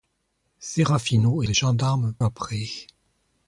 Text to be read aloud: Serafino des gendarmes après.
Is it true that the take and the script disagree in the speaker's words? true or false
false